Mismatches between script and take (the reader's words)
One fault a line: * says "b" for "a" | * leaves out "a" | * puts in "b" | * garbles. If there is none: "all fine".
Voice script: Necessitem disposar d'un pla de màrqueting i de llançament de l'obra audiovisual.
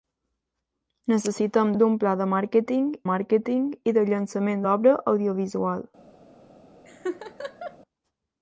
* leaves out "disposar"
* puts in "màrqueting"
* leaves out "de"